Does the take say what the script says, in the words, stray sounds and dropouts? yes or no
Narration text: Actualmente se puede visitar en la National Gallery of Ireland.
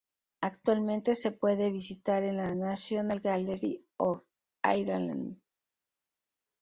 yes